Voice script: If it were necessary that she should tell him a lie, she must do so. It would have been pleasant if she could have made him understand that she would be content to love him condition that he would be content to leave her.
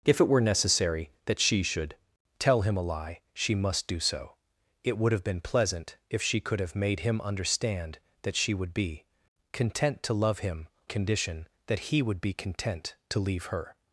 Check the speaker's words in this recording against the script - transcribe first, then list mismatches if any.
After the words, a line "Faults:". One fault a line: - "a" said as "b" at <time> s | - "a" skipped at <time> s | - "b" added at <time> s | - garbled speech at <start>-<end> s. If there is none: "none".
If it were necessary that she should tell him a lie, she must do so. It would have been pleasant if she could have made him understand that she would be content to love him condition that he would be content to leave her.
Faults:
none